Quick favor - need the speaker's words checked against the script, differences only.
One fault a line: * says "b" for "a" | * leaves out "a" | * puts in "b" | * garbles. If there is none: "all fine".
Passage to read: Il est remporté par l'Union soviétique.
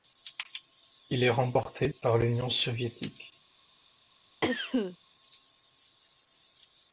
all fine